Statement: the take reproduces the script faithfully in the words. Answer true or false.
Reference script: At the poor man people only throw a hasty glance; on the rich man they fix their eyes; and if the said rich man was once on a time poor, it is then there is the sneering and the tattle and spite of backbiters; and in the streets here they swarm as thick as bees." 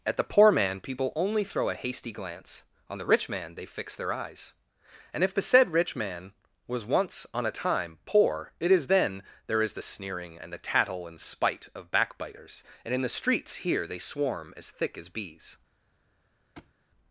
true